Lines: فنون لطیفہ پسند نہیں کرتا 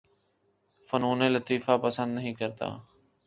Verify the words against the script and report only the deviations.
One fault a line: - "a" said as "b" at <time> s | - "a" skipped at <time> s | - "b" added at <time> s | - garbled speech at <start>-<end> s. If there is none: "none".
none